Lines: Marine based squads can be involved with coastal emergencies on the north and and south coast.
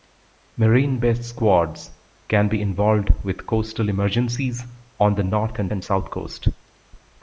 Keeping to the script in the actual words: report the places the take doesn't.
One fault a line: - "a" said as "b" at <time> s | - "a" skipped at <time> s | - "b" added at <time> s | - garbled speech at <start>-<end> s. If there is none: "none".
none